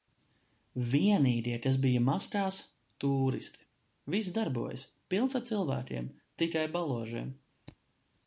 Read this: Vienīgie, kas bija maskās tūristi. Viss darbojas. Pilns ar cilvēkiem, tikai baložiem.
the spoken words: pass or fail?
pass